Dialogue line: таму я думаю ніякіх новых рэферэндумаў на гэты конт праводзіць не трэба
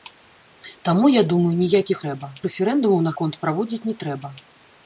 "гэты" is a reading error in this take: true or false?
true